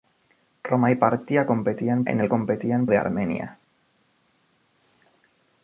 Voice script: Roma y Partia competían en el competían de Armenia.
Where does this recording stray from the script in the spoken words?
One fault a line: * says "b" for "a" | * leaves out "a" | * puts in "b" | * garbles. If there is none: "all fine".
all fine